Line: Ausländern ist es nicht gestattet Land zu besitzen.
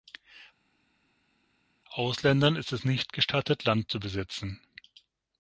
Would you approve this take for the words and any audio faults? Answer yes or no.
yes